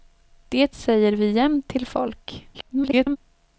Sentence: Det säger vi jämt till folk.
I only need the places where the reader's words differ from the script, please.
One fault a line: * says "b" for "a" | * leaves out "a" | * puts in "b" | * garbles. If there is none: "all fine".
* garbles